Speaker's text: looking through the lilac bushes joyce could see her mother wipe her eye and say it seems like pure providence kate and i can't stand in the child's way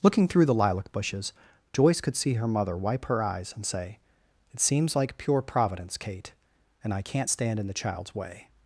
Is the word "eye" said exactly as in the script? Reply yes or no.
no